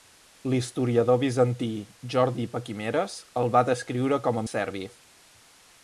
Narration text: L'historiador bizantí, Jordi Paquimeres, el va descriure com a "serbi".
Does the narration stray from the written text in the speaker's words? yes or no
no